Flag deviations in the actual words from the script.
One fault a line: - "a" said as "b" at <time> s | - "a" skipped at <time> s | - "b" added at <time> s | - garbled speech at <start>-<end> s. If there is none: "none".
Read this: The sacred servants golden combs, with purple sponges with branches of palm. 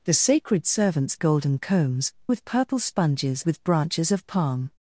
none